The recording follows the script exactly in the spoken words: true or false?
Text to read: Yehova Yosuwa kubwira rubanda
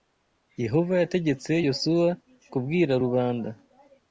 false